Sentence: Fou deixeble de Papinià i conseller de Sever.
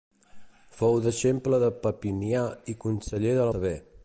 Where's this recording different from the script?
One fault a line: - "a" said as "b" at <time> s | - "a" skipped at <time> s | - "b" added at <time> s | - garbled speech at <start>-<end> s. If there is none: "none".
none